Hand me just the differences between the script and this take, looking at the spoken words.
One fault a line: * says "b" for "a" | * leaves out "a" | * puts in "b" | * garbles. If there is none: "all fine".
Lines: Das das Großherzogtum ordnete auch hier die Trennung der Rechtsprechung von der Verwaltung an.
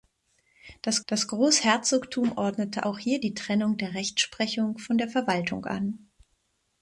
all fine